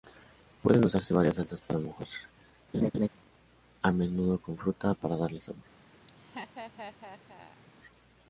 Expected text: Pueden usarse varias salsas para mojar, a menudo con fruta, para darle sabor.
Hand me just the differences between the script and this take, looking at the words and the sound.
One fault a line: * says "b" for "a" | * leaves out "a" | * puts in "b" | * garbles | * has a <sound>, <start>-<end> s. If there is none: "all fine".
* has a laugh, 2.7-3.1 s
* has a laugh, 6.1-7.6 s